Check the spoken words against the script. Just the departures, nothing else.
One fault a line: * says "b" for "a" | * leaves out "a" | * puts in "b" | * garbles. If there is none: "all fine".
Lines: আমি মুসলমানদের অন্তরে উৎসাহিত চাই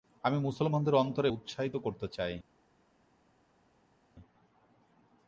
* puts in "করতে"